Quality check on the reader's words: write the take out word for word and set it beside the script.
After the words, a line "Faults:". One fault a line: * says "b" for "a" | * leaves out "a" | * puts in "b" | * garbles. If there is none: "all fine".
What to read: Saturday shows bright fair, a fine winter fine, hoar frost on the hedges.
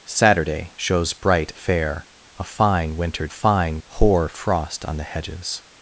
Saturday shows bright fair, a fine winter fine, hoar frost on the hedges.
Faults:
all fine